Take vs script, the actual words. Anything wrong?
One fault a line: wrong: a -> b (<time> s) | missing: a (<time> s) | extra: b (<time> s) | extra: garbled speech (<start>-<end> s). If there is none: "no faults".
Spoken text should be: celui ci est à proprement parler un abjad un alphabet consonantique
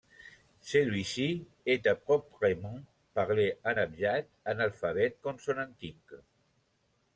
no faults